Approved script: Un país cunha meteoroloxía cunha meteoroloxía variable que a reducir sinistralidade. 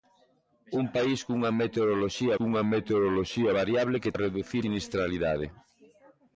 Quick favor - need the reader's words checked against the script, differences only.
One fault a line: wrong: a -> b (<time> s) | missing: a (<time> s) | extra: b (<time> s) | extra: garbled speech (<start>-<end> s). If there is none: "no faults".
no faults